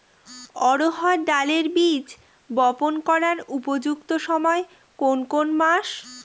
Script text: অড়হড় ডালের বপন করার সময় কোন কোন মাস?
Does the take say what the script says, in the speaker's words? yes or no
no